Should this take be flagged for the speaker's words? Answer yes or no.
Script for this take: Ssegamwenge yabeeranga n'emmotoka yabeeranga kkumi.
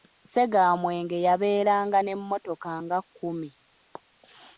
yes